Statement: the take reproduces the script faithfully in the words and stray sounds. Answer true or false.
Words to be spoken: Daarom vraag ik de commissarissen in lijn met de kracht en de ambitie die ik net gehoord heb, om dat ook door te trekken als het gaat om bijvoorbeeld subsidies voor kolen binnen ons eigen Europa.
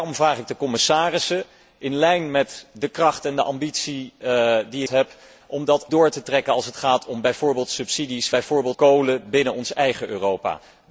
false